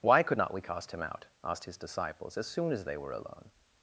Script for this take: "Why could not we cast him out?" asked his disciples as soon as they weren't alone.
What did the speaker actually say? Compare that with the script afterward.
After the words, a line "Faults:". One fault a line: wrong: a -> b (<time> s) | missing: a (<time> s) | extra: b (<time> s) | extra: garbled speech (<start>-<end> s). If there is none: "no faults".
"Why could not we cast him out?" asked his disciples as soon as they were alone.
Faults:
wrong: weren't -> were (3.0 s)